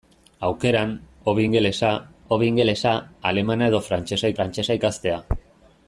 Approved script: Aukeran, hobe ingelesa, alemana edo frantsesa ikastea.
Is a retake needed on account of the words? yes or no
yes